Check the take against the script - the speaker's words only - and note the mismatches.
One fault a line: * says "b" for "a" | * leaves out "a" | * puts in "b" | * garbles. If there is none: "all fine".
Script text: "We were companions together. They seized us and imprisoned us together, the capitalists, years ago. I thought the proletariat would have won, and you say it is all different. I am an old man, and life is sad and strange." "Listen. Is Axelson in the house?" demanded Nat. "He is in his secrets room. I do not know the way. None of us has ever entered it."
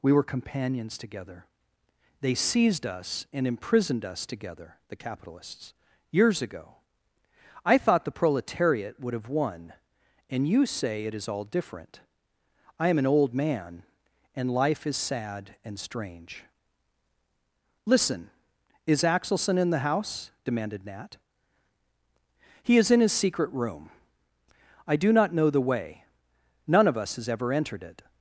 * says "secret" for "secrets"